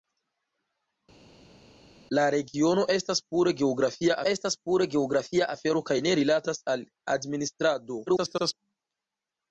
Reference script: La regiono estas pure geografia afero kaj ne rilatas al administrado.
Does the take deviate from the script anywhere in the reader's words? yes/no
yes